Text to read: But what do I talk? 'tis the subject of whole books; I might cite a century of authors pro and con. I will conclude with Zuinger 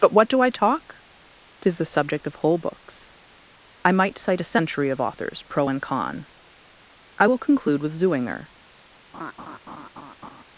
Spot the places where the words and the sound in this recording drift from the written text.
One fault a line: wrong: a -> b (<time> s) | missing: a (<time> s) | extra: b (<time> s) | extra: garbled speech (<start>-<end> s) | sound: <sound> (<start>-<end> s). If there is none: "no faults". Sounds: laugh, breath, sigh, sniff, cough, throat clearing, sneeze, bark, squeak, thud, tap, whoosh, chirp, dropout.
sound: laugh (9.1-10.4 s)